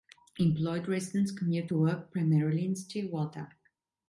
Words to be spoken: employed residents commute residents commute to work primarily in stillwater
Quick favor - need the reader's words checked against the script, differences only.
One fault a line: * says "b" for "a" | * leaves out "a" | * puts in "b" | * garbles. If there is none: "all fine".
* leaves out "residents commute"